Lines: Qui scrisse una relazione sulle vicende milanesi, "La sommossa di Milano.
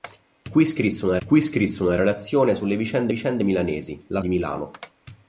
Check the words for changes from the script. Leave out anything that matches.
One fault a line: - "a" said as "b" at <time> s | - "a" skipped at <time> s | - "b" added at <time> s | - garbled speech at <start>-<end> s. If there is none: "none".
- "qui scrisse una" added at 1.2 s
- "vicende" added at 3.1 s
- "sommossa" skipped at 4.2 s